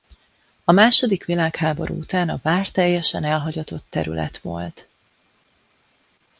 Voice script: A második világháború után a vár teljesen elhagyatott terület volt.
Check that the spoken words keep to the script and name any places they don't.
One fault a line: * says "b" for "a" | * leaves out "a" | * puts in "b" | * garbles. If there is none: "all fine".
all fine